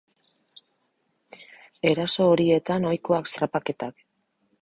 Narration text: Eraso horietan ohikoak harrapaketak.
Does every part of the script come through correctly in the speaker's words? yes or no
yes